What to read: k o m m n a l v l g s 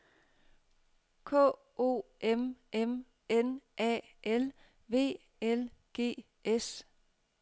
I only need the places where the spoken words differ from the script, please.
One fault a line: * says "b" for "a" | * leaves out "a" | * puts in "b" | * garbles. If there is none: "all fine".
all fine